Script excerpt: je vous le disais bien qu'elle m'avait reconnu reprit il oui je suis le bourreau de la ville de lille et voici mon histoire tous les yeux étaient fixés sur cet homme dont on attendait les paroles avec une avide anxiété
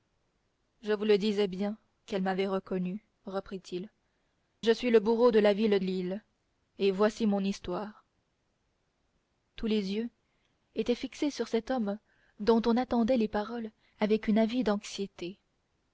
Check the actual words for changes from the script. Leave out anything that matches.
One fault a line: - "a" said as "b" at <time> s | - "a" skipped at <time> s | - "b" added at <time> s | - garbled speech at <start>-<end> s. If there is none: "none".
- "oui" skipped at 3.9 s
- "de" skipped at 5.8 s